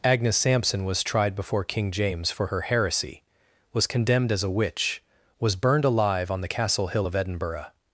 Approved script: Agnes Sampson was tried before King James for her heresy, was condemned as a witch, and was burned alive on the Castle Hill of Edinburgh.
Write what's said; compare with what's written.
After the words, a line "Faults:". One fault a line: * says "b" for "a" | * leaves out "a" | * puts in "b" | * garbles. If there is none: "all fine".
Agnes Sampson was tried before King James for her heresy, was condemned as a witch, was burned alive on the Castle Hill of Edinburgh.
Faults:
* leaves out "and"